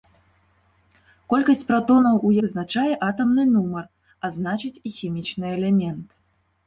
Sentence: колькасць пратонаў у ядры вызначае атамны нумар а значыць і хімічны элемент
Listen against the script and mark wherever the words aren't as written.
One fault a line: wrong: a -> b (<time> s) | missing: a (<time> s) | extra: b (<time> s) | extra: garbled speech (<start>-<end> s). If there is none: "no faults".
missing: ядры (2.3 s)